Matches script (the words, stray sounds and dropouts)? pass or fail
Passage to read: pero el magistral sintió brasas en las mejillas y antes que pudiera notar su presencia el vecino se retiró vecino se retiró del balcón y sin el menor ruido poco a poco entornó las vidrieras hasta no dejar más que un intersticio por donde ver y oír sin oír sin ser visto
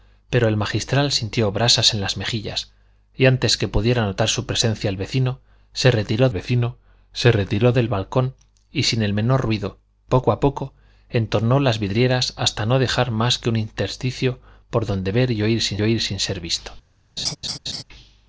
fail